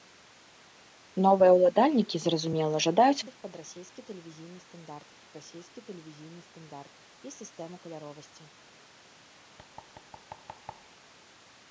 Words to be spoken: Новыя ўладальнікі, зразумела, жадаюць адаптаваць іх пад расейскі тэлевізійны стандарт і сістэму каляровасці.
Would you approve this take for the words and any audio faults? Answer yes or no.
no